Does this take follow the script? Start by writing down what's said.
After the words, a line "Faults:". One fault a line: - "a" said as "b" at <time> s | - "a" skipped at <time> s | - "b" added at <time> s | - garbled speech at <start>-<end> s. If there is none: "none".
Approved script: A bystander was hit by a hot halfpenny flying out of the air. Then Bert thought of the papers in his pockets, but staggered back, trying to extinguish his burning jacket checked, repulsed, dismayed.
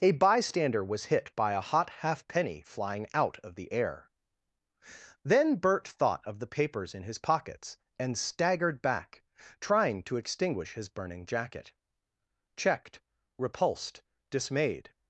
A bystander was hit by a hot halfpenny flying out of the air. Then Bert thought of the papers in his pockets, and staggered back, trying to extinguish his burning jacket checked, repulsed, dismayed.
Faults:
- "but" said as "and" at 8.0 s